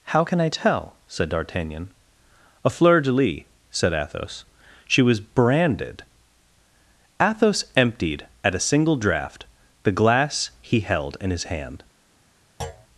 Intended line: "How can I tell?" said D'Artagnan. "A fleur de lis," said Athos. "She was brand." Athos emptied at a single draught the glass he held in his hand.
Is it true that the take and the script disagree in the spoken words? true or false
true